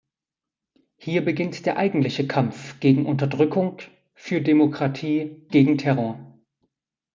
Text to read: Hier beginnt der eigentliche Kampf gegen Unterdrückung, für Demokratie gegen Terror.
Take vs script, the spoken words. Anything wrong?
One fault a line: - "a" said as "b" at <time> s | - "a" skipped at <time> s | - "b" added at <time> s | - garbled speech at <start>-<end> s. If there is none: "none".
none